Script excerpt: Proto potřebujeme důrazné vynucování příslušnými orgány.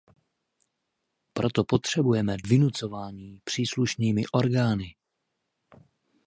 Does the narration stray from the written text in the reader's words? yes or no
yes